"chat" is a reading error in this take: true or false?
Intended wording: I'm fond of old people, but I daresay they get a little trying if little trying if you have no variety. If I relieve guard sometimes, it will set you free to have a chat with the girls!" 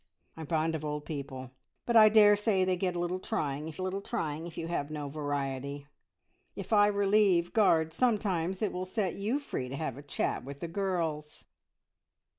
false